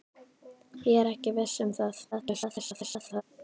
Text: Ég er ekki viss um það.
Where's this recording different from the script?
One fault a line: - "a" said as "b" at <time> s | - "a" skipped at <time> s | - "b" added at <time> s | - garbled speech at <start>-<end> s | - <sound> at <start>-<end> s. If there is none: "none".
- garbled speech at 2.1-3.2 s